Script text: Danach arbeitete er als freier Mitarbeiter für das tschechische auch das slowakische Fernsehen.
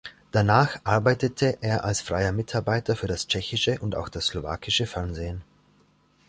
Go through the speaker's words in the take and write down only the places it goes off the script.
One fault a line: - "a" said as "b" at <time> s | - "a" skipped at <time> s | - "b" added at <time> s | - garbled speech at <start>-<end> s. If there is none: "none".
- "und" added at 3.8 s